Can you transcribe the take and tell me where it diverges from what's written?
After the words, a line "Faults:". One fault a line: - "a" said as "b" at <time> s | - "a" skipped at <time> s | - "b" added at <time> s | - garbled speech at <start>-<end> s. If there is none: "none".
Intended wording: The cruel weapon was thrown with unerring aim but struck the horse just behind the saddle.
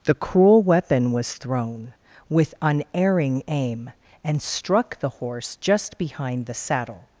The cruel weapon was thrown with unerring aim and struck the horse just behind the saddle.
Faults:
- "but" said as "and" at 4.2 s